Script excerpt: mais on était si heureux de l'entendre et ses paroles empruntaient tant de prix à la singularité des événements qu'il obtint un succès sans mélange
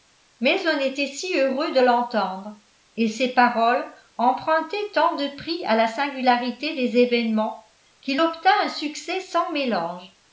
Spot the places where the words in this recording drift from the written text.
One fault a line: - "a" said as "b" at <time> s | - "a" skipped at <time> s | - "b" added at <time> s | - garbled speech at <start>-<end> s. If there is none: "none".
none